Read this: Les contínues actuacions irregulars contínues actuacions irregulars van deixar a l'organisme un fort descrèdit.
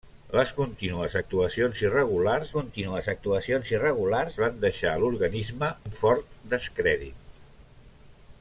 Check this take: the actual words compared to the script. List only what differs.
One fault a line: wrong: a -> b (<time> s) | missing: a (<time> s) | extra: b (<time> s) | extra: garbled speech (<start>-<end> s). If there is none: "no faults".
no faults